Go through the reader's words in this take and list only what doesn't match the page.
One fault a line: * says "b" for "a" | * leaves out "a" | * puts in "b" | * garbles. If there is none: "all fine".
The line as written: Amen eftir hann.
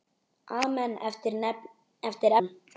all fine